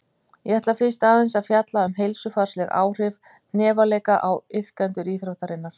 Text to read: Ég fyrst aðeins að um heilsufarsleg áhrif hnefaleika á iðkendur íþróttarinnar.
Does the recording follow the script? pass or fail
fail